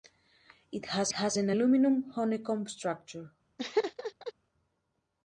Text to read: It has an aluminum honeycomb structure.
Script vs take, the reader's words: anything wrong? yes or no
yes